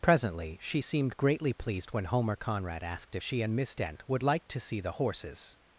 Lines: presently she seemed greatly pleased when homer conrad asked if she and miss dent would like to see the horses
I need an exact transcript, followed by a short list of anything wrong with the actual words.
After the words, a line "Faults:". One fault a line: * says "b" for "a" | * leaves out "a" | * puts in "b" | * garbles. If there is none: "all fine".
presently she seemed greatly pleased when homer conrad asked if she and miss dent would like to see the horses
Faults:
all fine